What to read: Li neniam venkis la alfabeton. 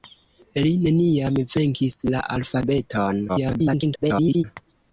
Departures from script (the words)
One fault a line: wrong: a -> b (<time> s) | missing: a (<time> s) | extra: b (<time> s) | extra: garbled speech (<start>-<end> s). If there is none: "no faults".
extra: garbled speech (3.3-4.4 s)